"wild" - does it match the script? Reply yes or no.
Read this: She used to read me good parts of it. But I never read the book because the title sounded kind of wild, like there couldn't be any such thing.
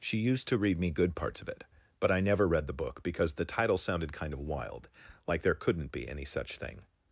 yes